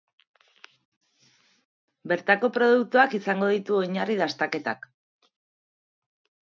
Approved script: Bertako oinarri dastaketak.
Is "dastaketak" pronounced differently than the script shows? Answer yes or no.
no